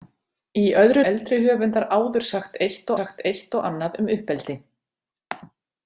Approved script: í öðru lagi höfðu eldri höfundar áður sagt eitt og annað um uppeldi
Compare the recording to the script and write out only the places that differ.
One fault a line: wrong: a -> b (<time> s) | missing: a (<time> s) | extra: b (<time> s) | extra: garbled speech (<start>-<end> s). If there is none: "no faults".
missing: lagi höfðu (1.0 s)
extra: sagt eitt (3.0 s)